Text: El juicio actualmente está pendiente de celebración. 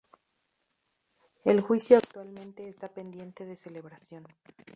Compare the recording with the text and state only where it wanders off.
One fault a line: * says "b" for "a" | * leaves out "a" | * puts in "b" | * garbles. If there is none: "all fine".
all fine